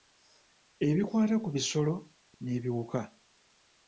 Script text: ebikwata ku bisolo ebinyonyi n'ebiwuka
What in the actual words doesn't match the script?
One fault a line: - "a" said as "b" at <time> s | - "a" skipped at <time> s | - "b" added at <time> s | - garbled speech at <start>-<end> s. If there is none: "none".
- "ebinyonyi" skipped at 1.9 s